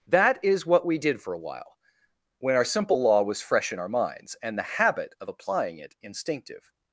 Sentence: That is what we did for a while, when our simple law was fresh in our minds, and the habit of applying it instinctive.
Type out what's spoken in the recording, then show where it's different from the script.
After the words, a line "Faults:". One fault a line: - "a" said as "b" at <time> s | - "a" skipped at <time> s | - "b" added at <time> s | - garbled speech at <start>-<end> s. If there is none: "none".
That is what we did for a while, when our simple law was fresh in our minds, and the habit of applying it instinctive.
Faults:
none